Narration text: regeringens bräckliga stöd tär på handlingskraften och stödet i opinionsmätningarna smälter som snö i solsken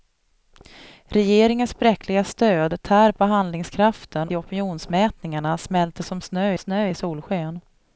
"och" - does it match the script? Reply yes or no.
no